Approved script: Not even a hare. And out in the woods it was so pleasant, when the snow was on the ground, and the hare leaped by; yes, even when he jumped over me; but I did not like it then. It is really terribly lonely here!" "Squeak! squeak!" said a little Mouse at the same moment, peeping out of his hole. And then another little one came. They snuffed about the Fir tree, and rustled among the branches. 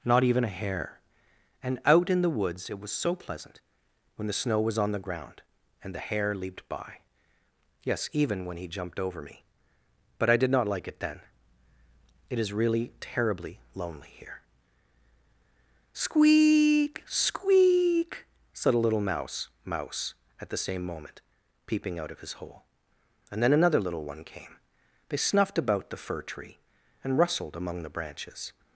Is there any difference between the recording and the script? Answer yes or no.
yes